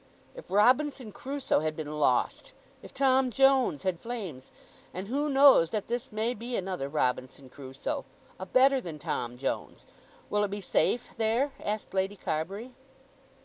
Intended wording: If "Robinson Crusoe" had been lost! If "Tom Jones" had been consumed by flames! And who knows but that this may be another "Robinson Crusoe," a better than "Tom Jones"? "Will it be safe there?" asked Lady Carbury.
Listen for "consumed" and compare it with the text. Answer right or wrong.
wrong